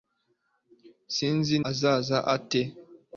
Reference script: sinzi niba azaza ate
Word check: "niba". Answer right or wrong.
wrong